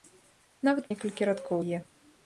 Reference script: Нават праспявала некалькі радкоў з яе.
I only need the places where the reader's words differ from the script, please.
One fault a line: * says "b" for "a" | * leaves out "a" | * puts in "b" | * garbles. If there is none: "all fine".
* leaves out "праспявала"
* leaves out "з"